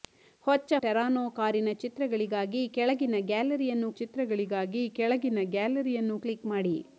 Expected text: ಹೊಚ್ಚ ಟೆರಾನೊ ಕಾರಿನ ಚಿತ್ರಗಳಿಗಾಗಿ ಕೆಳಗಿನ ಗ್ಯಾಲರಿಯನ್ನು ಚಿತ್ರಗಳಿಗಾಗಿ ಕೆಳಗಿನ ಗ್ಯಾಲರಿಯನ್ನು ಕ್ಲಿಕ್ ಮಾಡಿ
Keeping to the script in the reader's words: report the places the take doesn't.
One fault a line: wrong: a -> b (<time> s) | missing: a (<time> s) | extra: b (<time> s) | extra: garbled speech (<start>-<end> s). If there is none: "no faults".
no faults